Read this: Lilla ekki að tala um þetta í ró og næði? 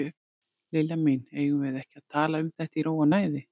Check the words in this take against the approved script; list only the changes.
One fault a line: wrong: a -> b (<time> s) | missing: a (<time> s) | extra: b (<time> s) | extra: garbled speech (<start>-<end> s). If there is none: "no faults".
extra: mín eigum við (1.1 s)